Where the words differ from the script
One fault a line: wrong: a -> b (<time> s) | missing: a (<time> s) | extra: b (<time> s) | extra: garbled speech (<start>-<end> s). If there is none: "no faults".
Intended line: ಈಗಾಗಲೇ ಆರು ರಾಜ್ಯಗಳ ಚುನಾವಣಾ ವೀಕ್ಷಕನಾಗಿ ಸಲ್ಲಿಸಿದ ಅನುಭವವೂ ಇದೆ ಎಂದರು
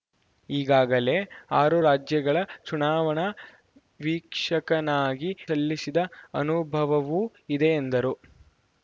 no faults